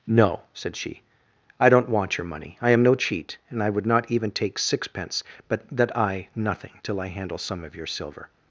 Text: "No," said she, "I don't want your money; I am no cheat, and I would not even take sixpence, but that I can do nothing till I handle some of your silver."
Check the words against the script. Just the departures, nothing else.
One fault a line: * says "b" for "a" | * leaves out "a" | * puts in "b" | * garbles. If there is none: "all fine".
* leaves out "can do"